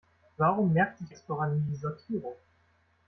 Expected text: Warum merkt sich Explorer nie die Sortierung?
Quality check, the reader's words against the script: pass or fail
pass